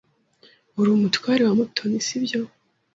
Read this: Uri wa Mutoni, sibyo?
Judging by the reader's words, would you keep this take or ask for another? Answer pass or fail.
fail